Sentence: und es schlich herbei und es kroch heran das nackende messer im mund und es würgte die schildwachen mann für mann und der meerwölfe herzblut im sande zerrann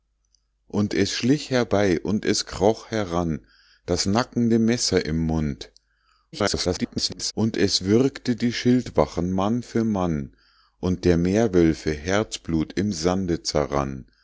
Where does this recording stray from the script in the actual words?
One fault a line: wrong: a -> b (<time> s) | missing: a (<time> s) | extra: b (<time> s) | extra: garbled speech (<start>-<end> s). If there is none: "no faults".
extra: garbled speech (6.3-7.3 s)